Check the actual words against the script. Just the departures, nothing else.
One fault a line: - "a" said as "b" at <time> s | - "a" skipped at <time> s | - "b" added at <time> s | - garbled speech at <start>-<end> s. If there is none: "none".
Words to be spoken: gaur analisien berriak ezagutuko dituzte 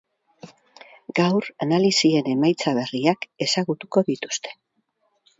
- "emaitza" added at 2.3 s